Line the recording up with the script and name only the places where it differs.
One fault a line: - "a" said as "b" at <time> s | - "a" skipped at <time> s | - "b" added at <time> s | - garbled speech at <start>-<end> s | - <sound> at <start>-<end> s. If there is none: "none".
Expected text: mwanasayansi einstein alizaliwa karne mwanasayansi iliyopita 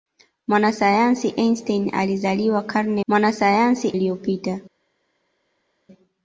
none